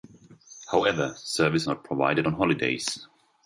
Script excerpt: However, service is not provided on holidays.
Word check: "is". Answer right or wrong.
wrong